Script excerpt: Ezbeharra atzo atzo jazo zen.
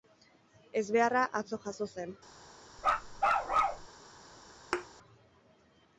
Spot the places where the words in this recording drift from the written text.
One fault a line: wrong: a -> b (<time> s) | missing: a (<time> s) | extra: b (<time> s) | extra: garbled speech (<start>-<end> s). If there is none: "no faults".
missing: atzo (1.6 s)